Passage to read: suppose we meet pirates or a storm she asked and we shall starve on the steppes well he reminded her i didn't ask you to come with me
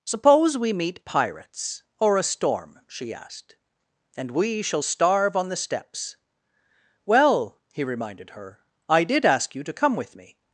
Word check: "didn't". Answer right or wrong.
wrong